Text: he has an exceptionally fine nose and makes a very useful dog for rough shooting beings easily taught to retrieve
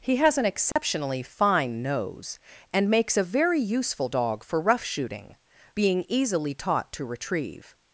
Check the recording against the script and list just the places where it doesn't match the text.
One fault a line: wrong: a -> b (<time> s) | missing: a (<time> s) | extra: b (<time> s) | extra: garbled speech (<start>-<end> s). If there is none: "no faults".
wrong: beings -> being (5.7 s)